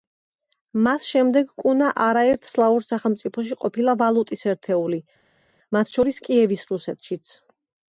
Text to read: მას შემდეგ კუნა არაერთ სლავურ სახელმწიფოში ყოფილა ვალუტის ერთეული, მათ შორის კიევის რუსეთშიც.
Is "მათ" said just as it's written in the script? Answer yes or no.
yes